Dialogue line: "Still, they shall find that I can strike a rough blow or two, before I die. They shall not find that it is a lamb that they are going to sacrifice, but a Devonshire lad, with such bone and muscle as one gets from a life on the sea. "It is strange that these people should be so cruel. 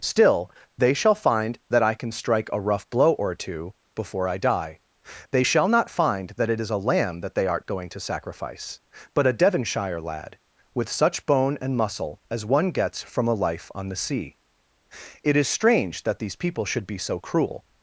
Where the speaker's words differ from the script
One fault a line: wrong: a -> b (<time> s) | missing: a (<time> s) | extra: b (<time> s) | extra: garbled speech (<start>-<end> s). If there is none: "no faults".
wrong: are -> art (7.5 s)